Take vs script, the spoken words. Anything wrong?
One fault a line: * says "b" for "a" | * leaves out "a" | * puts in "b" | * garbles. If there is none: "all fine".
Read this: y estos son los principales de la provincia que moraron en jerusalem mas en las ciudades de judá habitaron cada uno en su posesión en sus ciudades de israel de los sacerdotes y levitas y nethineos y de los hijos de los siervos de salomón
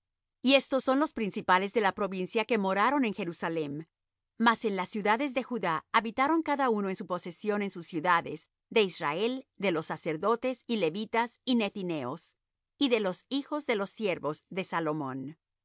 all fine